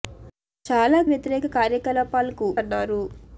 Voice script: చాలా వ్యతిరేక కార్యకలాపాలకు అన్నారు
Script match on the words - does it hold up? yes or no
yes